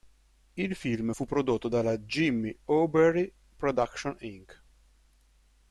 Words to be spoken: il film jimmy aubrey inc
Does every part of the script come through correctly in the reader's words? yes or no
no